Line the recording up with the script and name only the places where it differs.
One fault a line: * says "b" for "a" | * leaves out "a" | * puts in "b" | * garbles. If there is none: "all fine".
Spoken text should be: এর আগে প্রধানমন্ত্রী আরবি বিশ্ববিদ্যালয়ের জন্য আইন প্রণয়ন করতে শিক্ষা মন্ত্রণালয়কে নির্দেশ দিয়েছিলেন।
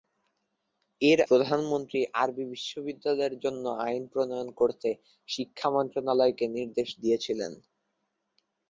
* leaves out "আগে"